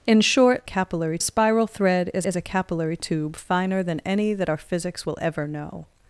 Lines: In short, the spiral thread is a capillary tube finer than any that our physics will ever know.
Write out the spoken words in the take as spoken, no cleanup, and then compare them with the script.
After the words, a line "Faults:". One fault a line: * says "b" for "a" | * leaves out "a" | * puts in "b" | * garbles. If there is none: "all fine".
In short, capillary spiral thread is is a capillary tube finer than any that our physics will ever know.
Faults:
* says "capillary" for "the"
* puts in "is"